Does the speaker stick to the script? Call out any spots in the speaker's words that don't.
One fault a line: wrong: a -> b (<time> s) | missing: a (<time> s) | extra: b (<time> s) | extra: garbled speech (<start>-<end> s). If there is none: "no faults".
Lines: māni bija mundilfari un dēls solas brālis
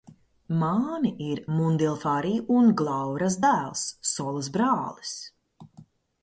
wrong: bija -> ir (1.2 s)
extra: glauras (2.8 s)